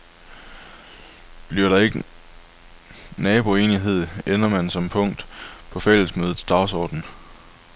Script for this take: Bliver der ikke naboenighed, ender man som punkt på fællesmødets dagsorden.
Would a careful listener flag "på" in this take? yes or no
no